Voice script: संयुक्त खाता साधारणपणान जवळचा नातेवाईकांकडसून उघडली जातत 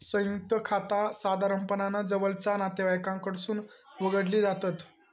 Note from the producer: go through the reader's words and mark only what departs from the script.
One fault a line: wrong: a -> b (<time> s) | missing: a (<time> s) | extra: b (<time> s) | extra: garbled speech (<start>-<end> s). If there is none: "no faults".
no faults